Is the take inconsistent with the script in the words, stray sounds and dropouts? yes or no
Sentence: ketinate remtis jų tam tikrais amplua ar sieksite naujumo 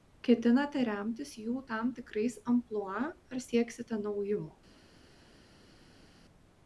no